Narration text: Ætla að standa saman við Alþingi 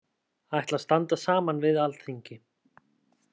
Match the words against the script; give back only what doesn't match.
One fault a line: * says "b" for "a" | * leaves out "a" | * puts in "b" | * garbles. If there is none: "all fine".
all fine